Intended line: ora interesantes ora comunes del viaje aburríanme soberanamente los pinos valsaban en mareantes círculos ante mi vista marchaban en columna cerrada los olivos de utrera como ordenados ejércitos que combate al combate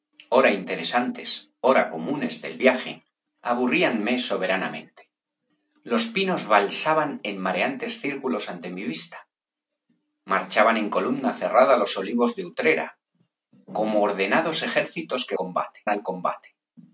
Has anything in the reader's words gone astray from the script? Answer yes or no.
no